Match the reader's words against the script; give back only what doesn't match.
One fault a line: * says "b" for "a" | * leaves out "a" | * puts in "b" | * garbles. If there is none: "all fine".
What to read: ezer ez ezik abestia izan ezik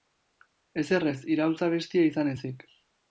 * says "iraultza" for "ezik"